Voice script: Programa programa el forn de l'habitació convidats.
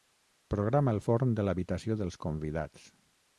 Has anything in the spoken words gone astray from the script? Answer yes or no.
yes